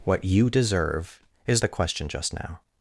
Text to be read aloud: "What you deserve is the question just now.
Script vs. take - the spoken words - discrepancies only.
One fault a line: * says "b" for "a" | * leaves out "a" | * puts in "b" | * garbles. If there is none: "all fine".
all fine